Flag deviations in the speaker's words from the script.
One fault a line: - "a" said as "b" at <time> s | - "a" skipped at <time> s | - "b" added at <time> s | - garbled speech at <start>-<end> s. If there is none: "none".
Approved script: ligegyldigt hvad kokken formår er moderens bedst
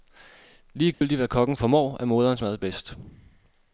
- "mad" added at 2.4 s